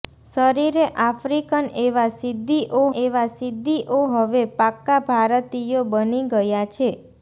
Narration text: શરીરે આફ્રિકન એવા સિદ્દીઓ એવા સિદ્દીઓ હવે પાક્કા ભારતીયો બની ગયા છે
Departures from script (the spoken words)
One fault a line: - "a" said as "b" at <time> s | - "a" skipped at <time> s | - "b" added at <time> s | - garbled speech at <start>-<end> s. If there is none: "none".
none